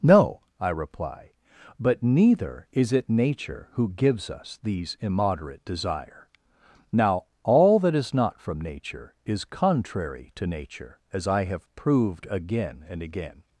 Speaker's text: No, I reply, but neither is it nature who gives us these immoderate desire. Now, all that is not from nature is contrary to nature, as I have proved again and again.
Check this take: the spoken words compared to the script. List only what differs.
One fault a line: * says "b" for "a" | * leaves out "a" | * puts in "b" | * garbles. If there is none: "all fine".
all fine